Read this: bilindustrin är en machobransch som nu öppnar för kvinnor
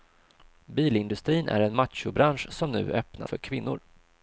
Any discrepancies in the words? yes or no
no